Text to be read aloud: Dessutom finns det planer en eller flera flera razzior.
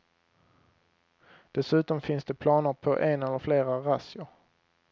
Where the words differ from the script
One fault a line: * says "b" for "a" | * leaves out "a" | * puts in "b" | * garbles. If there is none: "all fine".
* puts in "på"
* leaves out "flera"